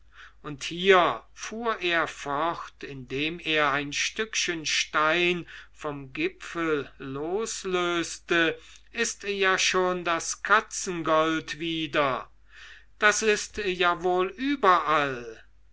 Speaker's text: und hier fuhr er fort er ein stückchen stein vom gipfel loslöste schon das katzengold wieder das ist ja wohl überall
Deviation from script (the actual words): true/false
true